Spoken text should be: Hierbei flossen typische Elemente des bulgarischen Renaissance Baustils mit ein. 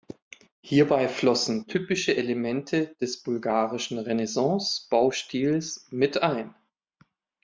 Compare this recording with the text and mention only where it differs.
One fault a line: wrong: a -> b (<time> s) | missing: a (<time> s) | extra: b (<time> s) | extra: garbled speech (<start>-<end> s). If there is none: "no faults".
no faults